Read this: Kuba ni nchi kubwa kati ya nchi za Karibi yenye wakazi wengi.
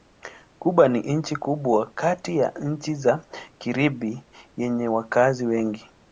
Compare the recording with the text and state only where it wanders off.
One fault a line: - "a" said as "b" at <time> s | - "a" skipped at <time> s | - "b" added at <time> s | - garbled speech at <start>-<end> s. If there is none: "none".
none